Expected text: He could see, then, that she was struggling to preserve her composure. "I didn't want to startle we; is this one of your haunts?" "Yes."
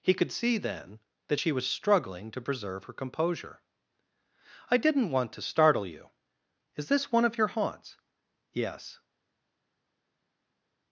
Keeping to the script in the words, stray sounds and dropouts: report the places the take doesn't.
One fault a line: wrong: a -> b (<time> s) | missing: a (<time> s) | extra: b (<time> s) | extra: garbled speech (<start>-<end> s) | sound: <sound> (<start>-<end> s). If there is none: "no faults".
wrong: we -> you (5.8 s)